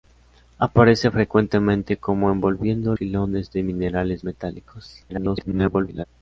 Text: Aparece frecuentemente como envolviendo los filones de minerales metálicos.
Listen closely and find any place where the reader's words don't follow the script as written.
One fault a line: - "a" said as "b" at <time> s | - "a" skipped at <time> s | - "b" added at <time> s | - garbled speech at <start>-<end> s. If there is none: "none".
- "los" skipped at 3.0 s
- garbled speech at 5.1-6.0 s